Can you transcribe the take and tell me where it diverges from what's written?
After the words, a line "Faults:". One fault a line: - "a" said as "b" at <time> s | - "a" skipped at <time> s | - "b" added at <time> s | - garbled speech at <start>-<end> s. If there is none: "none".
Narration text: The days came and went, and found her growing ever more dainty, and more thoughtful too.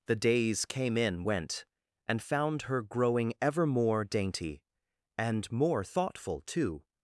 The days came in went, and found her growing ever more dainty, and more thoughtful too.
Faults:
- "and" said as "in" at 1.0 s